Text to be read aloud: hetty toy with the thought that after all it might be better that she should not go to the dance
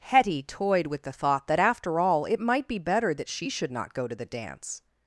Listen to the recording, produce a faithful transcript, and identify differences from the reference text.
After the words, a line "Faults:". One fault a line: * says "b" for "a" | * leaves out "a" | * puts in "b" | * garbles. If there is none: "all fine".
hetty toyed with the thought that after all it might be better that she should not go to the dance
Faults:
* says "toyed" for "toy"